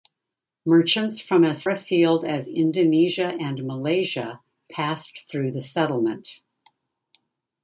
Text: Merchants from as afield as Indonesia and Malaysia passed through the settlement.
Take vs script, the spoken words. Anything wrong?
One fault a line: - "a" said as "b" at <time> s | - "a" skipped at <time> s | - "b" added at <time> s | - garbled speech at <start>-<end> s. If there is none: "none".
none